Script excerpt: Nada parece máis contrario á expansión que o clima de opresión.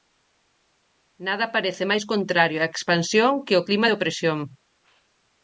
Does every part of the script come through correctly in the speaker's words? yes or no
yes